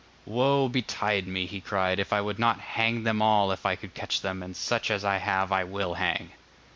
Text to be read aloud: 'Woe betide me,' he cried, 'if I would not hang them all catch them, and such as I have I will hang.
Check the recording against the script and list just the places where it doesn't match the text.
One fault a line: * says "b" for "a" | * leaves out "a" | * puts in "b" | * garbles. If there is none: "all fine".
* puts in "if I could"